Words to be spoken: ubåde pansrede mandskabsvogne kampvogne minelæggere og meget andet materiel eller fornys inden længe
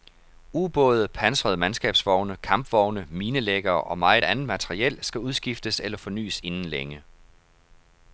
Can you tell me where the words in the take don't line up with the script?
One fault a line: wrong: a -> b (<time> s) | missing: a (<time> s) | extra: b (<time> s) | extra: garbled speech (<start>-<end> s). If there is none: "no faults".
extra: skal udskiftes (5.0 s)